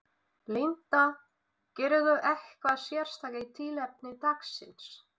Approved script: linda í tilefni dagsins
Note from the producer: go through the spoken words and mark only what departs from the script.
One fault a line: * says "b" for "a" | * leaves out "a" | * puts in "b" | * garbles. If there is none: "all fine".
* puts in "gerirðu eitthvað sérstakt"